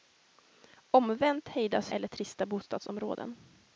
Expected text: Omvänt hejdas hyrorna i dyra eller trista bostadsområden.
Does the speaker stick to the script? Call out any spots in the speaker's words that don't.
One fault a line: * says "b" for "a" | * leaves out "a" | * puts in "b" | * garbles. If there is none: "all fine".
* leaves out "hyrorna i dyra"